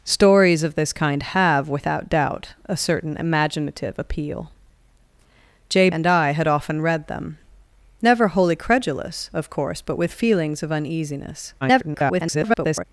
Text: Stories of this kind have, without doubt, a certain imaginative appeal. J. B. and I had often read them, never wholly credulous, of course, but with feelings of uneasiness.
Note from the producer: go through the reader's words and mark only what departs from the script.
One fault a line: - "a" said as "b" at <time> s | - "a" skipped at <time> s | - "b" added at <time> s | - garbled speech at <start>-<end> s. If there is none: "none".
- "B" skipped at 5.9 s
- garbled speech at 11.6-12.8 s